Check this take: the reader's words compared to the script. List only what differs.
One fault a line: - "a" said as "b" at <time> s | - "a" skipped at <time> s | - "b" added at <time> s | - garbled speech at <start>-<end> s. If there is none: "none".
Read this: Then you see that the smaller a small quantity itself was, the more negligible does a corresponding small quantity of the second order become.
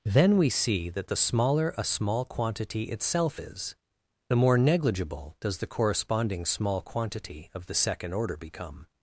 - "you" said as "we" at 0.4 s
- "was" said as "is" at 3.4 s
- "a" said as "the" at 5.6 s